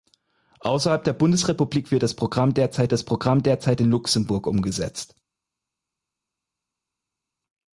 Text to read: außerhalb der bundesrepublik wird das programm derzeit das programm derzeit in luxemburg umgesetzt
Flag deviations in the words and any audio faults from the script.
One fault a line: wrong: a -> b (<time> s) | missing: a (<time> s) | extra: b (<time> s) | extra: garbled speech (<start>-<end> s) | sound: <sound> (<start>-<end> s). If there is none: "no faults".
no faults